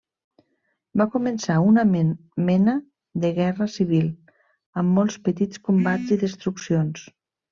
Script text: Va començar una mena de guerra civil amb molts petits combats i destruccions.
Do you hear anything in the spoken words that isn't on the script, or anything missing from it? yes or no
no